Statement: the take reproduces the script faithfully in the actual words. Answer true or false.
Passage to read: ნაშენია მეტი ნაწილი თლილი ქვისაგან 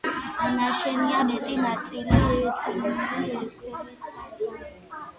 true